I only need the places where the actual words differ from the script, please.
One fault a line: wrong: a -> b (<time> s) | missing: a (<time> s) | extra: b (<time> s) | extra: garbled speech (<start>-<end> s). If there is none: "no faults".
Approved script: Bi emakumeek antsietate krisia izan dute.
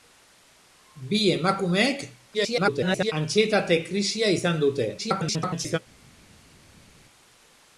extra: garbled speech (2.3-3.1 s)
extra: garbled speech (5.0-5.8 s)